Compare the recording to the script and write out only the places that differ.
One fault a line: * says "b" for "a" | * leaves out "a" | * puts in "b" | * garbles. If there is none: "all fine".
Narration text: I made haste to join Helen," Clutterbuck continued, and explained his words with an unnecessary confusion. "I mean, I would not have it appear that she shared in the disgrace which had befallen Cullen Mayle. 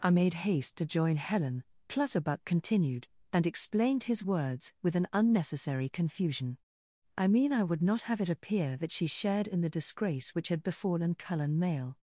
all fine